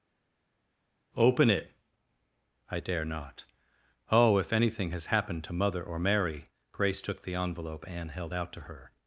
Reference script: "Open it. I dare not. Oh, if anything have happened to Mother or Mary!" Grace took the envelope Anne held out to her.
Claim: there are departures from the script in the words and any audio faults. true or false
true